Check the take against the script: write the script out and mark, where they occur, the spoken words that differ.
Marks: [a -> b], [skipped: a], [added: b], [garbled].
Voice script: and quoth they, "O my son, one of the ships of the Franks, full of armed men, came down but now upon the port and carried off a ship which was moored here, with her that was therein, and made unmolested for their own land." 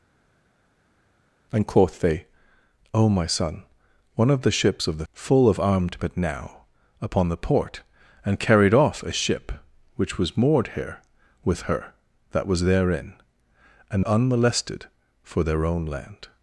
and quoth they, "O my son, one of the ships of the [skipped: Franks,] full of armed [skipped: men, came down] but now upon the port and carried off a ship which was moored here, with her that was therein, and [skipped: made] unmolested for their own land."